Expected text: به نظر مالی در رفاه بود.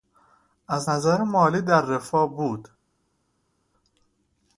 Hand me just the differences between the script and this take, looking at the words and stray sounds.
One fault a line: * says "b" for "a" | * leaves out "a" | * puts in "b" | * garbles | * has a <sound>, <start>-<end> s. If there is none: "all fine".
* says "از" for "به"